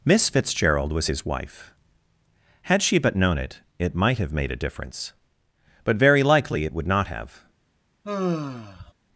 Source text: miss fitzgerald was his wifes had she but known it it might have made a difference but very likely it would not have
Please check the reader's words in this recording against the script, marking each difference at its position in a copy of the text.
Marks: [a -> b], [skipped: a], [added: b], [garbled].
miss fitzgerald was his [wifes -> wife] had she but known it it might have made a difference but very likely it would not have